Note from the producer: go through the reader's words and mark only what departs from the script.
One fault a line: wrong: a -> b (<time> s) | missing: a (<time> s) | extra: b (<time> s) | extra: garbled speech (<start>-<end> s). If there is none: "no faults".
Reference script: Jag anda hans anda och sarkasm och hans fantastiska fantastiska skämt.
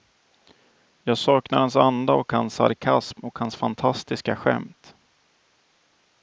wrong: anda -> saknar (1.2 s)
extra: hans (2.3 s)
missing: fantastiska (4.4 s)